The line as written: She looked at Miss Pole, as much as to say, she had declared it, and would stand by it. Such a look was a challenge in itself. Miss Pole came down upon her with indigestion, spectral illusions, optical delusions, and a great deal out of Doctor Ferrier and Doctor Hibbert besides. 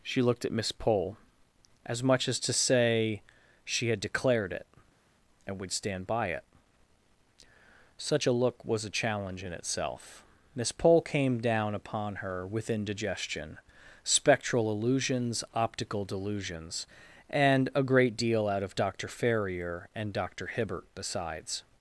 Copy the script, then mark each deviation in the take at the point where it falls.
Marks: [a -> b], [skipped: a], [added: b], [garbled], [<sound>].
She looked at Miss Pole, as much as to say, she had declared it, and would stand by it. Such a look was a challenge in itself. Miss Pole came down upon her with indigestion, spectral illusions, optical delusions, and a great deal out of Doctor Ferrier and Doctor Hibbert besides.